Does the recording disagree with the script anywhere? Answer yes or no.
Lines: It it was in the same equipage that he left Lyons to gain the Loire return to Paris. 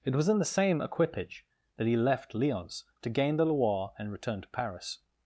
yes